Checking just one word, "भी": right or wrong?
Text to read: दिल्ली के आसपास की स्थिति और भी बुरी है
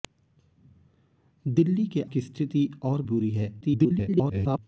wrong